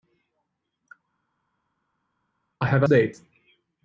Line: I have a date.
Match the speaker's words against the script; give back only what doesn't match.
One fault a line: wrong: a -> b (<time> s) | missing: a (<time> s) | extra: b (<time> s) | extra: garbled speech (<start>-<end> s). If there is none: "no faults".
no faults